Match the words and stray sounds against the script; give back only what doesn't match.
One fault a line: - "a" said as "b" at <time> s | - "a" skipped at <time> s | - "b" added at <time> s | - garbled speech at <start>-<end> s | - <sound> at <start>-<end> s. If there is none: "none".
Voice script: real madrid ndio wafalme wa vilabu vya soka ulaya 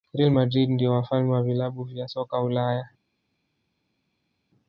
none